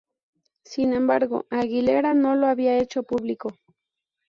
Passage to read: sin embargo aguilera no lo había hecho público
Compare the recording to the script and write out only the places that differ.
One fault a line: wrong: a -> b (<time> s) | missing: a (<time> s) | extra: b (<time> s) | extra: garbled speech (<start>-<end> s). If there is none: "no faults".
no faults